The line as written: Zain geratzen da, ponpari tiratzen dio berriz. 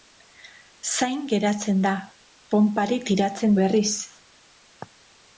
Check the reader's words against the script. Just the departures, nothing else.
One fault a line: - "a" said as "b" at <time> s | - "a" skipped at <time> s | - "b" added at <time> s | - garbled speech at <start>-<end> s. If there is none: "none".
- "dio" skipped at 3.5 s